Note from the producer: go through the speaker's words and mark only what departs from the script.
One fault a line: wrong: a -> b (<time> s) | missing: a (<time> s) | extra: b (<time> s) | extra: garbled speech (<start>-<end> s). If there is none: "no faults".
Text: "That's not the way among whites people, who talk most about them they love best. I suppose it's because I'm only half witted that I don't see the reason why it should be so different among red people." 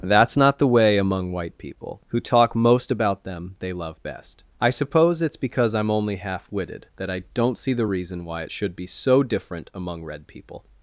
wrong: whites -> white (1.3 s)